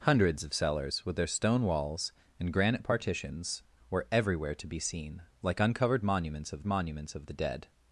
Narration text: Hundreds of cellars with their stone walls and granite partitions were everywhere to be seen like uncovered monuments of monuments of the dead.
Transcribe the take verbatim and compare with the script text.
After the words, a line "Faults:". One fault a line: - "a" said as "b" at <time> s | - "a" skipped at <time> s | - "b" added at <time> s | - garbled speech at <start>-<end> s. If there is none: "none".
Hundreds of cellars with their stone walls and granite partitions were everywhere to be seen like uncovered monuments of monuments of the dead.
Faults:
none